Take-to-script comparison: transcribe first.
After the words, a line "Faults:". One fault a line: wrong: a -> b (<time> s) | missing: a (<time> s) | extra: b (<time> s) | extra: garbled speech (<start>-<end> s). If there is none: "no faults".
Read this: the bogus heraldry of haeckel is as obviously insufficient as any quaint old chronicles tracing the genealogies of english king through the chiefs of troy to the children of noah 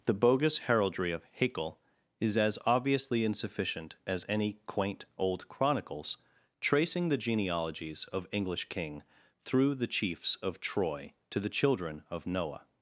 the bogus heraldry of haeckel is as obviously insufficient as any quaint old chronicles tracing the genealogies of english king through the chiefs of troy to the children of noah
Faults:
no faults